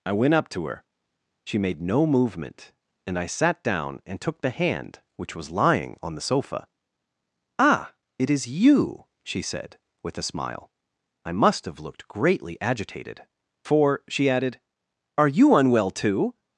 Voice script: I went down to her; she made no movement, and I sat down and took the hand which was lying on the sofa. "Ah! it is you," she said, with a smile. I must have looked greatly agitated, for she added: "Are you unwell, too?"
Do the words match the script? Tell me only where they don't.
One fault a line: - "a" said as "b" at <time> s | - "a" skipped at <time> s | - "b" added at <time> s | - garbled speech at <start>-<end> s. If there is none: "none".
- "down" said as "up" at 0.3 s